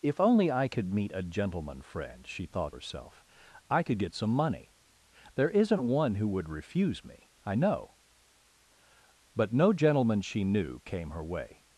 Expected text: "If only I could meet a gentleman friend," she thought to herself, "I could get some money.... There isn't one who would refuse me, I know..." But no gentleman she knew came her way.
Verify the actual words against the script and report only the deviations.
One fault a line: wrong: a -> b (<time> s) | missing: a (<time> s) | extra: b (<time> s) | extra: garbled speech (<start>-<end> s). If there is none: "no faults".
missing: to (2.8 s)